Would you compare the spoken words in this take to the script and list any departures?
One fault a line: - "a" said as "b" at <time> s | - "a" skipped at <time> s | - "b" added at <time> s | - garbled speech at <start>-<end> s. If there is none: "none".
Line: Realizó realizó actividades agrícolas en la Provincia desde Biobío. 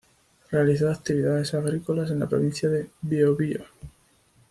- "realizó" skipped at 0.9 s
- "desde" said as "de" at 2.7 s